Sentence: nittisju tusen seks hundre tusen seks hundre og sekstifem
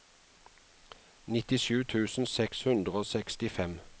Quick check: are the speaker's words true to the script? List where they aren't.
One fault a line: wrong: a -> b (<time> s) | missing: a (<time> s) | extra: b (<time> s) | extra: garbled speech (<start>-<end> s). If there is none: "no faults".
missing: tusen seks hundre (2.9 s)